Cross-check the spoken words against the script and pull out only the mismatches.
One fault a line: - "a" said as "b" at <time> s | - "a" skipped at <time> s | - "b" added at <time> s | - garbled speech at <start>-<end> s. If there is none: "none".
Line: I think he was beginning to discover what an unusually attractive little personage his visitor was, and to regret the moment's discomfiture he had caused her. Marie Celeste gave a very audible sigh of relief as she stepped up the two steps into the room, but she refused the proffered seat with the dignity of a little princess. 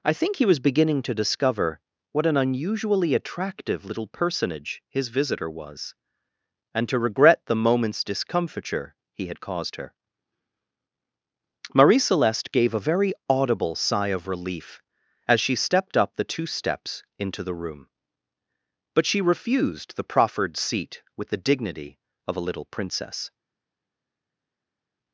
none